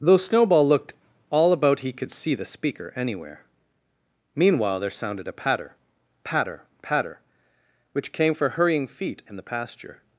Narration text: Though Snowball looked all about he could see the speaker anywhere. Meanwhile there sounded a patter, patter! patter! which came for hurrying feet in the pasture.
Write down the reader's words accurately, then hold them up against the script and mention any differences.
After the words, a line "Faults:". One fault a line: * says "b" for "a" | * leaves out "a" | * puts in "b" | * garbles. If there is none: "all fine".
Though Snowball looked all about he could see the speaker anywhere. Meanwhile there sounded a patter, patter! patter! which came for hurrying feet in the pasture.
Faults:
all fine